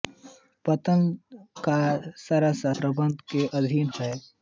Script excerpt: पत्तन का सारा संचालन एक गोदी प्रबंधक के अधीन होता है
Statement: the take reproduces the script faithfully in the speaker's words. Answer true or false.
false